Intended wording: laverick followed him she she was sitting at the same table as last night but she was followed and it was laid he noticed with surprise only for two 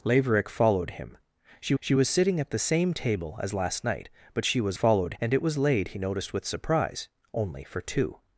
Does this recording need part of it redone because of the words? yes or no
no